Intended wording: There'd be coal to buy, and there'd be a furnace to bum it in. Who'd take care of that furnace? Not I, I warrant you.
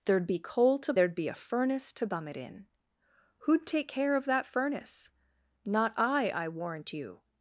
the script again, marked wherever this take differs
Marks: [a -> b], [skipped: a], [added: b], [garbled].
There'd be coal to [skipped: buy, and] there'd be a furnace to bum it in. Who'd take care of that furnace? Not I, I warrant you.